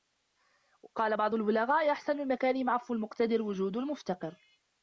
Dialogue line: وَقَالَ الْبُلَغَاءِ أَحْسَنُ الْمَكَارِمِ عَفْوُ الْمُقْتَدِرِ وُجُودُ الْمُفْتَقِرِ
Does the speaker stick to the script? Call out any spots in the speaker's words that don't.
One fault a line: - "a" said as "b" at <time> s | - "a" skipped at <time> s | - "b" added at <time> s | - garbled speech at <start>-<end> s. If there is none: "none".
- "بَعْضُ" added at 1.1 s